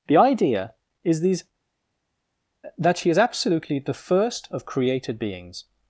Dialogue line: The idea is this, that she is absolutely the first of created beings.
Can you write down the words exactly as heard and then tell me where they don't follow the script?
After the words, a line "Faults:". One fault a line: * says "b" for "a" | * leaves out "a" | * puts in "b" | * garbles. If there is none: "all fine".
The idea is these, that she is absolutely the first of created beings.
Faults:
* says "these" for "this"